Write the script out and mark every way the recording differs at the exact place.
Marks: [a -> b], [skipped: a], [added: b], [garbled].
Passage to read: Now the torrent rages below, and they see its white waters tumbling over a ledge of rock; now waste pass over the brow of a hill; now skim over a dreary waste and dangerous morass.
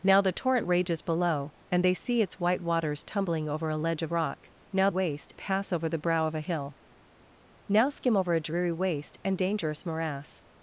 Now the torrent rages below, and they see its white waters tumbling over a ledge of rock; now waste pass over the brow of a hill; now skim over a dreary waste and dangerous morass.